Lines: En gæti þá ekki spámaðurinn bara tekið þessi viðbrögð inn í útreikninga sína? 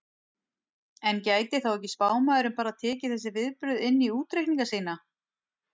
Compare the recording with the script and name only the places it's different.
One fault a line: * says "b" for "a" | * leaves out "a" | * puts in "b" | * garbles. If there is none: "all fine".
all fine